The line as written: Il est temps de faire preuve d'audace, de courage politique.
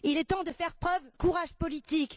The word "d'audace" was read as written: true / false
false